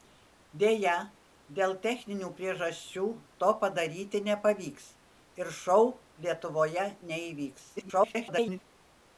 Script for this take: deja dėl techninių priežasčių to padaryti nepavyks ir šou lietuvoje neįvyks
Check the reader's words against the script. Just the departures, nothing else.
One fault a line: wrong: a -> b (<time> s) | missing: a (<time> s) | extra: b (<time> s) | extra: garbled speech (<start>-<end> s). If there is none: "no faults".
extra: garbled speech (7.8-8.6 s)